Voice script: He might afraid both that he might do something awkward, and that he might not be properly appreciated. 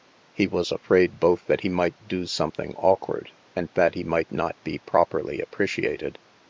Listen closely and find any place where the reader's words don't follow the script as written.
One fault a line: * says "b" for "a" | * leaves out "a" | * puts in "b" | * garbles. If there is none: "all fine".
* says "was" for "might"